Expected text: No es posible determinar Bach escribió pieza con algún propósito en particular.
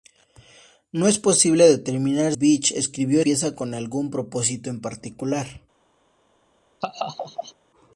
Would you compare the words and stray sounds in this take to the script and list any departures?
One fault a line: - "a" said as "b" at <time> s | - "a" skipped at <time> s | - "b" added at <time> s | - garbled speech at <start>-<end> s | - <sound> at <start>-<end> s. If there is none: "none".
- laugh at 6.8-7.5 s